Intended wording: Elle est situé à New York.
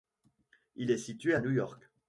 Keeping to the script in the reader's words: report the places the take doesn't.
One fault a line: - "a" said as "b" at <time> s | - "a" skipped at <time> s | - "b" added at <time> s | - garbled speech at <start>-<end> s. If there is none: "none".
- "Elle" said as "Il" at 0.7 s